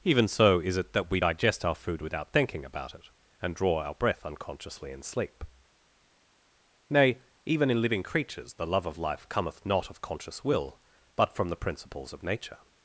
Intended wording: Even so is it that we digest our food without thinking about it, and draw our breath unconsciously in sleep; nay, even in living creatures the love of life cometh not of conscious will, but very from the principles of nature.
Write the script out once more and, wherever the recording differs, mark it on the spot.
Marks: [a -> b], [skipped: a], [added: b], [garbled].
Even so is it that we digest our food without thinking about it, and draw our breath unconsciously in sleep; nay, even in living creatures the love of life cometh not of conscious will, but [skipped: very] from the principles of nature.